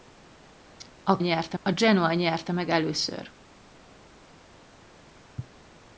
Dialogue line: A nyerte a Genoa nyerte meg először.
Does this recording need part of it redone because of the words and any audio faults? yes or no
no